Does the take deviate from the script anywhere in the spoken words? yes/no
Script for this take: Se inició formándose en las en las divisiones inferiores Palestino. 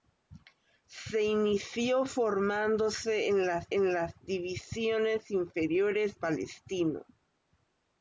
no